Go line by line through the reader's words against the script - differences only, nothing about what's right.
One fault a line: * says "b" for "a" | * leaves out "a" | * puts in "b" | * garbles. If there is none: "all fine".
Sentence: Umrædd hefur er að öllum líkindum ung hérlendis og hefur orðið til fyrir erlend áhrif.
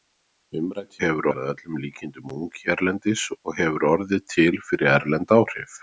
all fine